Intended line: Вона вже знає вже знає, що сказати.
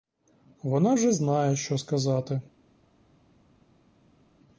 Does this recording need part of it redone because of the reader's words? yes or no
yes